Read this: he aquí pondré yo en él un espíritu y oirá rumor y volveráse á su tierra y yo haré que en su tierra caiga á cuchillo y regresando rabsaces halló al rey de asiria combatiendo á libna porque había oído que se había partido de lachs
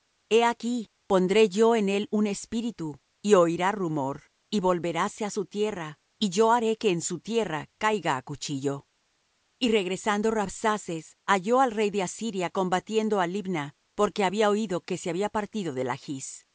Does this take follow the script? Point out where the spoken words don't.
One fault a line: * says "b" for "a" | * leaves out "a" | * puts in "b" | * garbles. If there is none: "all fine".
all fine